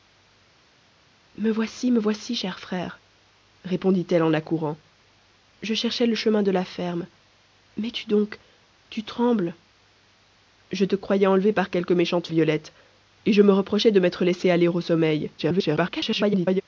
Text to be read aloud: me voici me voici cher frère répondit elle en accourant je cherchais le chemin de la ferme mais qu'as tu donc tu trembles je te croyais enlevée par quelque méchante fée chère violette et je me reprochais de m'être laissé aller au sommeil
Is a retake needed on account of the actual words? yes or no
yes